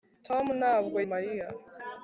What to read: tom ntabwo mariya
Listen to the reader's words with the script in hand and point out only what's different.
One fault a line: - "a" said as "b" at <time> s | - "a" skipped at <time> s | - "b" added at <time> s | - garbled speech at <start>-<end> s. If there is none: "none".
none